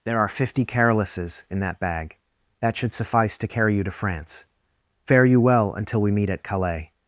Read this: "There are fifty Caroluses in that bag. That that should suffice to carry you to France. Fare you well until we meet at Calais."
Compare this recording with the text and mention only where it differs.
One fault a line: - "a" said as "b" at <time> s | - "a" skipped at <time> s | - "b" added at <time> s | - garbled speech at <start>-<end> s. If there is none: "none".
- "that" skipped at 2.8 s